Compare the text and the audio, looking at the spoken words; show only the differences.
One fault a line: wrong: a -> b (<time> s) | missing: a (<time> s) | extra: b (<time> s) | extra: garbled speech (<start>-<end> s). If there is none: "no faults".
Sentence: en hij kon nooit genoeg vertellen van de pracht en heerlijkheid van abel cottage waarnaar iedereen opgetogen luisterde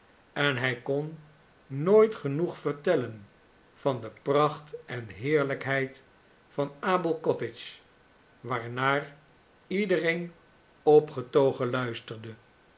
no faults